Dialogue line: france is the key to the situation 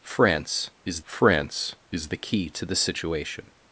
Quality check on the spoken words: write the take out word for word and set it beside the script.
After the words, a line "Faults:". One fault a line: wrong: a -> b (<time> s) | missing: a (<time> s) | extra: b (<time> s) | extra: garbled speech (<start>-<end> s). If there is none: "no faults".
france is france is the key to the situation
Faults:
extra: france is (1.0 s)